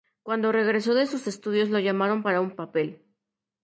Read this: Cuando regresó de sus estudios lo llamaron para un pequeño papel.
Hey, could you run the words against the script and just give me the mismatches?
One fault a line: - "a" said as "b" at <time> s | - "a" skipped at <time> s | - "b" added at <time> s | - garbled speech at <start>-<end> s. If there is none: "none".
- "pequeño" skipped at 2.5 s